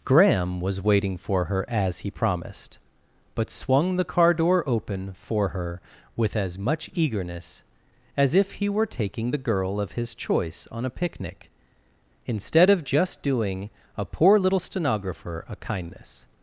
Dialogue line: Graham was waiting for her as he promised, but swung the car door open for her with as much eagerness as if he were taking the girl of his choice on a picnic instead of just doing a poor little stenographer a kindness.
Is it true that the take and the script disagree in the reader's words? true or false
false